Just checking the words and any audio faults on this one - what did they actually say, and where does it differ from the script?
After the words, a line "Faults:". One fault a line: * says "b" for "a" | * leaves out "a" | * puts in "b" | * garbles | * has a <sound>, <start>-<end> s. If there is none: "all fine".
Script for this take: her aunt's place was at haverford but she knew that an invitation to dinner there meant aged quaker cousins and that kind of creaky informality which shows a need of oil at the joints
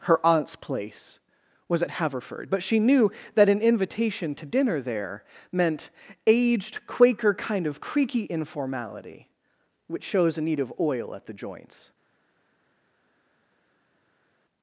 her aunt's place was at haverford but she knew that an invitation to dinner there meant aged quaker kind of creaky informality which shows a need of oil at the joints
Faults:
* leaves out "cousins and that"